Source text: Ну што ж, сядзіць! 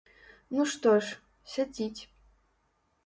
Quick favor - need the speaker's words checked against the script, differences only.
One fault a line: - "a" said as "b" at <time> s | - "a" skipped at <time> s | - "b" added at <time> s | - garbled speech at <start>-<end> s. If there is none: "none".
none